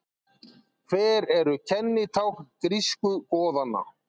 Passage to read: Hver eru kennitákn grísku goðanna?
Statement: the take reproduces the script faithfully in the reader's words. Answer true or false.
true